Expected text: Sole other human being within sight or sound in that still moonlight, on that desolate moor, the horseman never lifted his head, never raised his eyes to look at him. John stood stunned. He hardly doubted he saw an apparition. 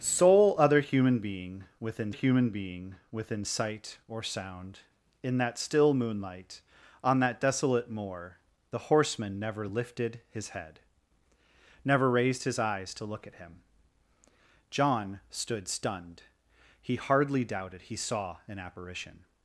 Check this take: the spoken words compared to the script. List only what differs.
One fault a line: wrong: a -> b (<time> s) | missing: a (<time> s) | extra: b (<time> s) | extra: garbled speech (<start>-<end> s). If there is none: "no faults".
extra: human being within (2.1 s)